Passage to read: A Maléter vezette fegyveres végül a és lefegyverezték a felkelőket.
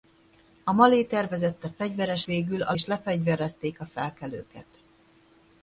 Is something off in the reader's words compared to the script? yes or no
no